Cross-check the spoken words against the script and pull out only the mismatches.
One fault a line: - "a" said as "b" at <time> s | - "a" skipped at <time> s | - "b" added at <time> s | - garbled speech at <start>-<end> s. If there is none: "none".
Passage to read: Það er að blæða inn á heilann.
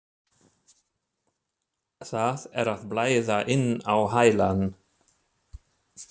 none